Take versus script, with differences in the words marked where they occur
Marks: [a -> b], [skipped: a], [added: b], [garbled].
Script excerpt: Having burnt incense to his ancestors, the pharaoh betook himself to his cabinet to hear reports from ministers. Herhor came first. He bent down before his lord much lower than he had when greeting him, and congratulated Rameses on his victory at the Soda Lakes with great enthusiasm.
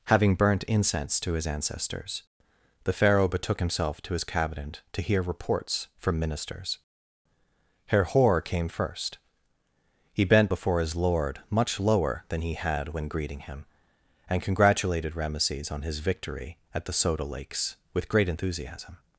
Having burnt incense to his ancestors, the pharaoh betook himself to his cabinet to hear reports from ministers. Herhor came first. He bent [skipped: down] before his lord much lower than he had when greeting him, and congratulated Rameses on his victory at the Soda Lakes with great enthusiasm.